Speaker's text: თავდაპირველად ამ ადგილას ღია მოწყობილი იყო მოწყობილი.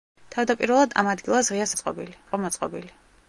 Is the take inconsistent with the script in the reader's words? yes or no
no